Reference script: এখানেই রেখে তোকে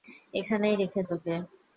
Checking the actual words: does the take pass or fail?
pass